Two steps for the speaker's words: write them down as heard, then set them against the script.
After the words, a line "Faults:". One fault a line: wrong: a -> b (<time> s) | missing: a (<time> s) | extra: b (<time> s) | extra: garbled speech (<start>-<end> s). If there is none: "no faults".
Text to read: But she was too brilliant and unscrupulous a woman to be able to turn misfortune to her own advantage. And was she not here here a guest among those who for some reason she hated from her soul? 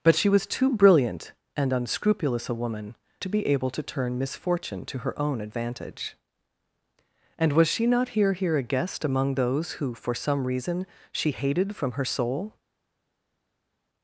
But she was too brilliant and unscrupulous a woman to be able to turn misfortune to her own advantage. And was she not here here a guest among those who for some reason she hated from her soul?
Faults:
no faults